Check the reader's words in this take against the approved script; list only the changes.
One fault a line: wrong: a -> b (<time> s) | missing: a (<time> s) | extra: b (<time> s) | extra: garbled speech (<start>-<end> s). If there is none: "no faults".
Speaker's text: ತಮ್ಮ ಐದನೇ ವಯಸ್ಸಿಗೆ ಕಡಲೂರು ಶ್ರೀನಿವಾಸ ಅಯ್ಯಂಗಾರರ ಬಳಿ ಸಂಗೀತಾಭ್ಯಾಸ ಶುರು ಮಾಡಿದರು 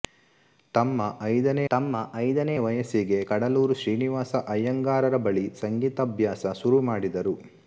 extra: ತಮ್ಮ ಐದನೇ (1.7 s)